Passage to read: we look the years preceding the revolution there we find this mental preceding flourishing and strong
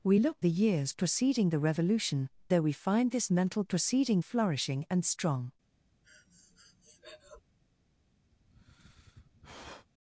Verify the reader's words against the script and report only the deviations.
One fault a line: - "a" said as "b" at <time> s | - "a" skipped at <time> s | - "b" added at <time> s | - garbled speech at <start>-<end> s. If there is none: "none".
none